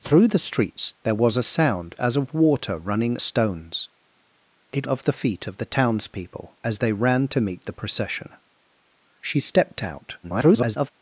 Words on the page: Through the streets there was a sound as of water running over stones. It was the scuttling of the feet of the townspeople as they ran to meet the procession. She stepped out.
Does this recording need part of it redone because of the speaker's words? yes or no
yes